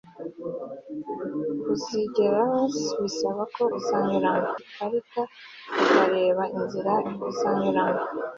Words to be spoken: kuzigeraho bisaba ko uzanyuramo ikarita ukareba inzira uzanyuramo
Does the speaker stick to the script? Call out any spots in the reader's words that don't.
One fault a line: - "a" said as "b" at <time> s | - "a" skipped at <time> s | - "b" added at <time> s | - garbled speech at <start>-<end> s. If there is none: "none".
none